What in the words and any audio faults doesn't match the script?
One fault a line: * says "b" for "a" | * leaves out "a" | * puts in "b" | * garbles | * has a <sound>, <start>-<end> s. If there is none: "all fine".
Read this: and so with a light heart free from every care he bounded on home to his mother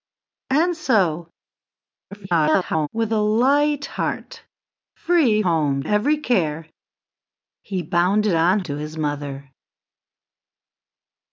* garbles
* says "home" for "from"
* leaves out "home"